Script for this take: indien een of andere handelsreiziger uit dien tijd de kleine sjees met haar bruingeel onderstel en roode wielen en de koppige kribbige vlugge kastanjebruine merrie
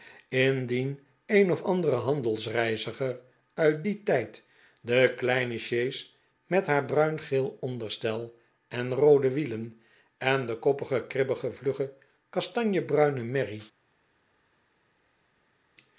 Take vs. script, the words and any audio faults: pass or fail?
pass